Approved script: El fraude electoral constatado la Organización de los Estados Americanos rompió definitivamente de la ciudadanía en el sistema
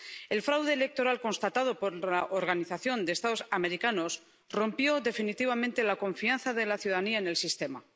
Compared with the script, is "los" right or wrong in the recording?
right